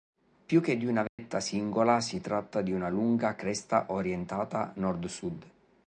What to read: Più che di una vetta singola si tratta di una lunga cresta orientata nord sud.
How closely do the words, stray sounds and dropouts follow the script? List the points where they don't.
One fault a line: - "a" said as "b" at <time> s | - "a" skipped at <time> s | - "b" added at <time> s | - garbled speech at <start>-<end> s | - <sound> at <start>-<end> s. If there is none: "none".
- dropout at 1.1-1.2 s